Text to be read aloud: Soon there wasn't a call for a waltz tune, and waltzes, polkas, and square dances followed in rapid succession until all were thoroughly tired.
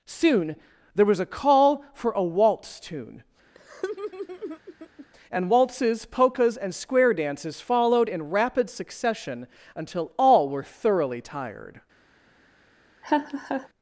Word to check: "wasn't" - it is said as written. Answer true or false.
false